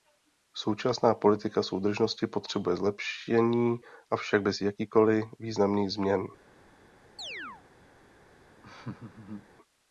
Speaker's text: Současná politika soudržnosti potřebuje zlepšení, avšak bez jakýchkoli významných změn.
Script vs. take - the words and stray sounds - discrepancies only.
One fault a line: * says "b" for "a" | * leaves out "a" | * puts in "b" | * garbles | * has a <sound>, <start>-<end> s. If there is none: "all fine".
* has a chirp, 7.2-7.6 s
* has a laugh, 8.6-9.5 s